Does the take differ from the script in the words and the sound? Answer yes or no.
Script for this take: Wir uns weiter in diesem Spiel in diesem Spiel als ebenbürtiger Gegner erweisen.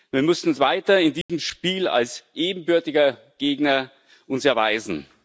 yes